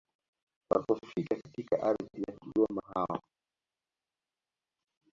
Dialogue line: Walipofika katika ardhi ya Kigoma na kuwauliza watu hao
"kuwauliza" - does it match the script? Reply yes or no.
no